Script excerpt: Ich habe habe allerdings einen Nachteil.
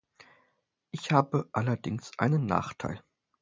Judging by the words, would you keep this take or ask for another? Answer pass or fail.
fail